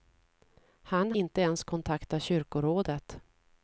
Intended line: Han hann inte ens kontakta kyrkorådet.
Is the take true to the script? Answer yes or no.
no